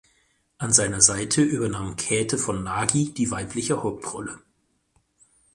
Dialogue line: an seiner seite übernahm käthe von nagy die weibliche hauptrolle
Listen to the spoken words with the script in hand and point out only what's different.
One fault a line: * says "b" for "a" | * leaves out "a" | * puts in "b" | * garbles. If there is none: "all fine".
all fine